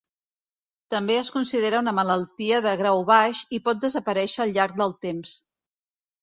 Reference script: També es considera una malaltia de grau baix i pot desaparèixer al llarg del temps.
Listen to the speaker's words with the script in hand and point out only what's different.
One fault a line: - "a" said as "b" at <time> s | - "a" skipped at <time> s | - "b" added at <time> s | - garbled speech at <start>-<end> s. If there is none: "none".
none